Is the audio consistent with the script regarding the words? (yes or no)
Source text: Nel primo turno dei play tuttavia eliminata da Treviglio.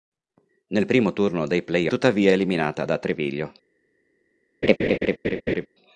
yes